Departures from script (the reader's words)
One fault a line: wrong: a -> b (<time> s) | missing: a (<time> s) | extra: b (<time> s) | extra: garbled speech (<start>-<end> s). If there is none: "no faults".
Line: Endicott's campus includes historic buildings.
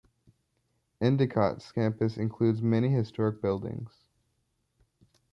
extra: many (2.6 s)